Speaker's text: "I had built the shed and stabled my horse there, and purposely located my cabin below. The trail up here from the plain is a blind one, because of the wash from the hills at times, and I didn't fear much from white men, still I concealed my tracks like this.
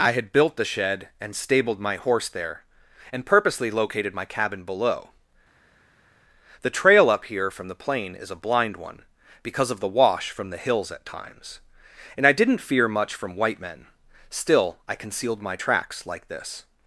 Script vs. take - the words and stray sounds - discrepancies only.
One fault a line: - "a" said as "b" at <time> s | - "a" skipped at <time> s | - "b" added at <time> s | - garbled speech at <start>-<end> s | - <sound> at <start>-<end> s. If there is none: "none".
none